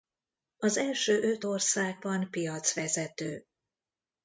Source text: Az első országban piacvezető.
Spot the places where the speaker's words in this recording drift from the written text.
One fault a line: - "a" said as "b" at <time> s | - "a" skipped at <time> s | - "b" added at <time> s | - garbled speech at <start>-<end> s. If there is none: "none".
- "öt" added at 1.2 s